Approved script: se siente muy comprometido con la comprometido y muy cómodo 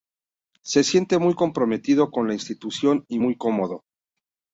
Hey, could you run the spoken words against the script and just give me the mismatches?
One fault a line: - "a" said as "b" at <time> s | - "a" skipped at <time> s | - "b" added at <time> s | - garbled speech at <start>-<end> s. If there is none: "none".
- "comprometido" said as "institución" at 2.3 s